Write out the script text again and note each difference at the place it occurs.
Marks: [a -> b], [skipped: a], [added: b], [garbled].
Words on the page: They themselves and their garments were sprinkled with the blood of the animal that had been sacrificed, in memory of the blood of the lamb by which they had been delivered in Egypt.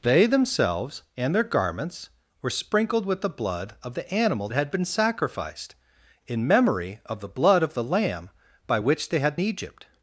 They themselves and their garments were sprinkled with the blood of the animal [skipped: that] had been sacrificed, in memory of the blood of the lamb by which they had [skipped: been delivered in] Egypt.